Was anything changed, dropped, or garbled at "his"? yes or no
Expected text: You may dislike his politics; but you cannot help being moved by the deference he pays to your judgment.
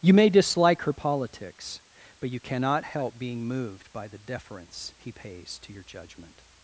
yes